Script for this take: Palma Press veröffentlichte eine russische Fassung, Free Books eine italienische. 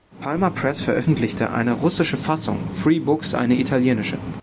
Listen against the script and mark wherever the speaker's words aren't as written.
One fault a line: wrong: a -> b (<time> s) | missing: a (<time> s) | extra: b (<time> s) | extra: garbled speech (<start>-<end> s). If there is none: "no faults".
no faults